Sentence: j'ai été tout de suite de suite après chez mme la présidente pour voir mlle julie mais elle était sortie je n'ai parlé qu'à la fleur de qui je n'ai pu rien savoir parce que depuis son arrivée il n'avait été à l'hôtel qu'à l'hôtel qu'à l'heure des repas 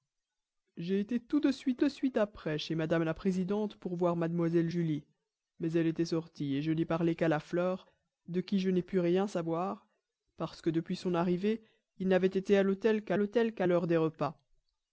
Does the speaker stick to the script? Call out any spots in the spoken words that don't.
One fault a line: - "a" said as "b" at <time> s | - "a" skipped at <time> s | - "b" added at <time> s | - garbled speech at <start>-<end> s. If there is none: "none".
none